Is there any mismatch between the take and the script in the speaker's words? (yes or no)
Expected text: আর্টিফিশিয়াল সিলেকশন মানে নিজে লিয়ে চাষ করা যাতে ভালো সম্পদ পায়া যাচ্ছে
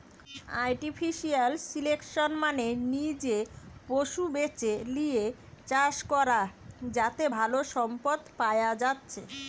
yes